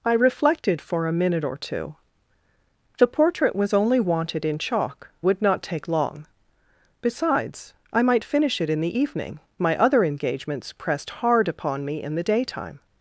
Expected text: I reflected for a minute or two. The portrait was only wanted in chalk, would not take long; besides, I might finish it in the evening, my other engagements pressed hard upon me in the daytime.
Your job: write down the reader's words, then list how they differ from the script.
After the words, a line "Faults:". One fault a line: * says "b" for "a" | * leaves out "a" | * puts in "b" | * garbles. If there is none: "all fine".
I reflected for a minute or two. The portrait was only wanted in chalk, would not take long; besides, I might finish it in the evening, my other engagements pressed hard upon me in the daytime.
Faults:
all fine